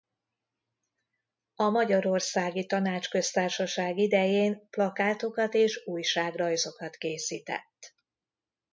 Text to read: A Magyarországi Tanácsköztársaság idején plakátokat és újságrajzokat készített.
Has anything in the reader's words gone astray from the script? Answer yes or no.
no